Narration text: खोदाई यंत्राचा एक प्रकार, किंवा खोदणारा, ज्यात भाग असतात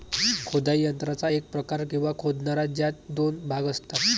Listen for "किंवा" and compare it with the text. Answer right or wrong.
right